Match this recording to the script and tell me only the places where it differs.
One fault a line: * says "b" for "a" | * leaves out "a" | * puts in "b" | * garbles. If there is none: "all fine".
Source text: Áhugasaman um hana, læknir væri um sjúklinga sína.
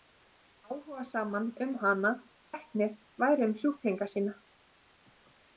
all fine